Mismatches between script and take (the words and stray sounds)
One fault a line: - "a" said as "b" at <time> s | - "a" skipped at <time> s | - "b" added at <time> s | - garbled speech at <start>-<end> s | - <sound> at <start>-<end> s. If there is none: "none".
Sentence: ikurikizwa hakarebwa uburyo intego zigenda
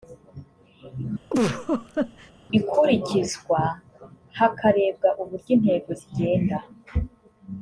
- laugh at 1.3-2.3 s